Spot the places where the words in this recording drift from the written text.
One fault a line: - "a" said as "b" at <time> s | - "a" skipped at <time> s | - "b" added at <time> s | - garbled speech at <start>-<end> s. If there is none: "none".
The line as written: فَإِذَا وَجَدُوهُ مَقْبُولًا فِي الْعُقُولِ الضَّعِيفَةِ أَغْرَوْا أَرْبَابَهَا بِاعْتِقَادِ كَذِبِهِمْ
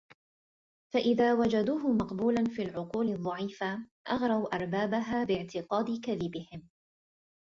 none